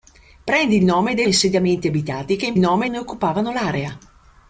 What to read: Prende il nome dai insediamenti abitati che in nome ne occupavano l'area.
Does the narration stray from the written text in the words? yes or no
no